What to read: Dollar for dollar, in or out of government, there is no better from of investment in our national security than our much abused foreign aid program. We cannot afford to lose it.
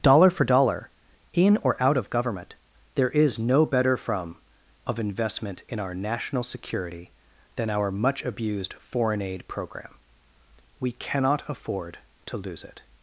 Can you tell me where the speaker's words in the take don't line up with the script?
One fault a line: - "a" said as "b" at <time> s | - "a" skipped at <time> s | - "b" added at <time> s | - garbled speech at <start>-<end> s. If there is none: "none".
none